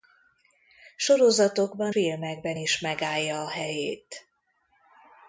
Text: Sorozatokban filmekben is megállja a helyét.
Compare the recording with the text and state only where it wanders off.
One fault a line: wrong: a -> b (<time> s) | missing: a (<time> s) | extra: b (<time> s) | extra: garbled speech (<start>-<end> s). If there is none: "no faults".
no faults